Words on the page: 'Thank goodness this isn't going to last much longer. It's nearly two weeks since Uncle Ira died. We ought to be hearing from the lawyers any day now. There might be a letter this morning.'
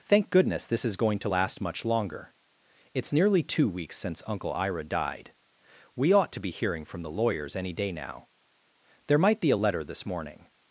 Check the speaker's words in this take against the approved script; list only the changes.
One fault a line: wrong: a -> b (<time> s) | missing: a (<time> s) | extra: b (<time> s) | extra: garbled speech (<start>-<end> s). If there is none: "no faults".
wrong: isn't -> is (0.8 s)